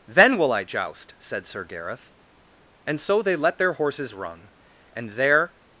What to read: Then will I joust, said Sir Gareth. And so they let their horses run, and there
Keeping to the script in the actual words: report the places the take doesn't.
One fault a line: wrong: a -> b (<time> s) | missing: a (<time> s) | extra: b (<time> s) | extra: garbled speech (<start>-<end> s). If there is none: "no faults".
no faults